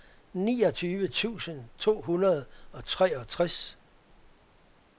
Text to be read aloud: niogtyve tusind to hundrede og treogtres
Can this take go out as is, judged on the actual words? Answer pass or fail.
pass